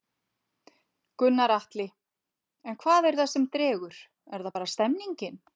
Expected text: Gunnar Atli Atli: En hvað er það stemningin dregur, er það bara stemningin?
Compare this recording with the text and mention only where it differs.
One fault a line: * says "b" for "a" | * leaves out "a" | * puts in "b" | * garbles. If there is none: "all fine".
* leaves out "Atli"
* says "sem" for "stemningin"